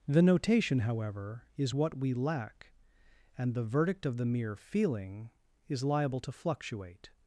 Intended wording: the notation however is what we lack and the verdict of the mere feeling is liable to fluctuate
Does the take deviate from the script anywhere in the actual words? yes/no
no